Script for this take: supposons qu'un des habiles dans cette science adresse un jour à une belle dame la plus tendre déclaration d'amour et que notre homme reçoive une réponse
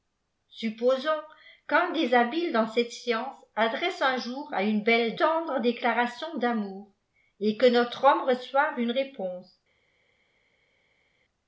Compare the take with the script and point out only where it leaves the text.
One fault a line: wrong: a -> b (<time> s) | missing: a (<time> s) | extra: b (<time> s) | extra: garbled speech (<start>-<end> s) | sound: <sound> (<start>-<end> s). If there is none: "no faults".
missing: dame la plus (5.2 s)